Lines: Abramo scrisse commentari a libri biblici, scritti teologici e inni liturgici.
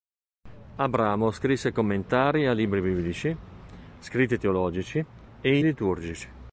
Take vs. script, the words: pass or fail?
fail